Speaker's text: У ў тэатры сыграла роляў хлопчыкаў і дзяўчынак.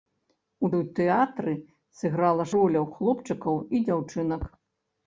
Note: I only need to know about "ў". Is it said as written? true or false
true